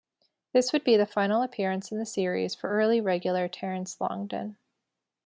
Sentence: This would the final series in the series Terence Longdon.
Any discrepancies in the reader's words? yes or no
yes